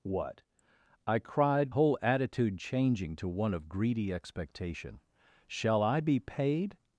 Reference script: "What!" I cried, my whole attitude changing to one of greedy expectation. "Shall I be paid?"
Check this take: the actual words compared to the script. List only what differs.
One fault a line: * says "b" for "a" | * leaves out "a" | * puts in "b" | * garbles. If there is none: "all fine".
* leaves out "my"